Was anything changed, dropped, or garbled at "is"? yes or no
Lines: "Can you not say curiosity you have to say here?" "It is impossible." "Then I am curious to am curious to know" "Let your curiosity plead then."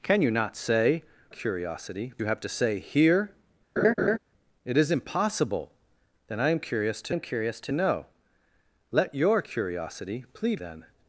no